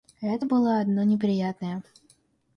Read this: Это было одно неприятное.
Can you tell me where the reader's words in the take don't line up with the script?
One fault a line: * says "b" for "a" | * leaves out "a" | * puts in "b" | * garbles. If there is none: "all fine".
all fine